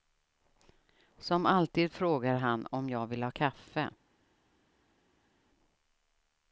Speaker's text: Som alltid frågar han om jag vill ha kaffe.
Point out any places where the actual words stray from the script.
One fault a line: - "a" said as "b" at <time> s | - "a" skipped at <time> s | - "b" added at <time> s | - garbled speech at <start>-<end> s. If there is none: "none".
none